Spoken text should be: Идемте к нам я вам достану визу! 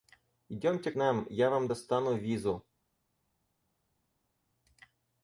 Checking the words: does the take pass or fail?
fail